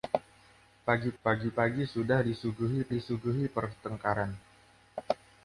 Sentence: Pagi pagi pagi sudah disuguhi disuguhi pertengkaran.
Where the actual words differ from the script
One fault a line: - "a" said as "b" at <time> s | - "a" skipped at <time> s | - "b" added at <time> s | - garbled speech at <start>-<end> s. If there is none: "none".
none